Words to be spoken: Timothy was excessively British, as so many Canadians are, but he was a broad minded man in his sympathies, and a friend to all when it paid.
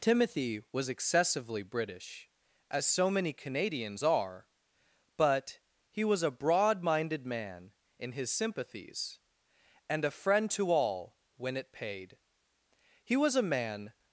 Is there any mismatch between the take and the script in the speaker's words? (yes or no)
yes